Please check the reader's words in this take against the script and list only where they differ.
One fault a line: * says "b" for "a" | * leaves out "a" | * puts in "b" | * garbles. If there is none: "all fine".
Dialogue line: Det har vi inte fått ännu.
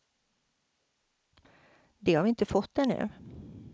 all fine